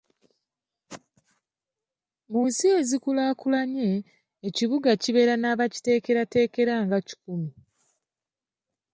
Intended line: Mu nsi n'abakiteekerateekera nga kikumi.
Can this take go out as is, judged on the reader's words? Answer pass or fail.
fail